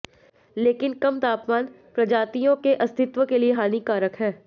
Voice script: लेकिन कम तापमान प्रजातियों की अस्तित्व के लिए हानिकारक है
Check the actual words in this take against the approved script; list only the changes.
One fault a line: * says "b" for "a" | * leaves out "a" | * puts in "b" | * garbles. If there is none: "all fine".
* says "के" for "की"